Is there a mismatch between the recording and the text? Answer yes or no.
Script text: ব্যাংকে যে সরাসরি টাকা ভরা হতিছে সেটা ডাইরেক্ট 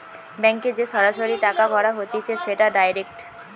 no